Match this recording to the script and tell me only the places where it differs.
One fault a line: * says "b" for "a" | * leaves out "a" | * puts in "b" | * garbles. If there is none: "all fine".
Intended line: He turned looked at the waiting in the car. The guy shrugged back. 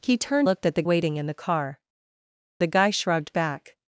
all fine